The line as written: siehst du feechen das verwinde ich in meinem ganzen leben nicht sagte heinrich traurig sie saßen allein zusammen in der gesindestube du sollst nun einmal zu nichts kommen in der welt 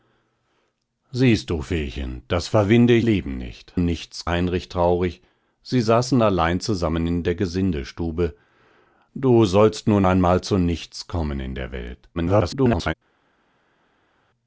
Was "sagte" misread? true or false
true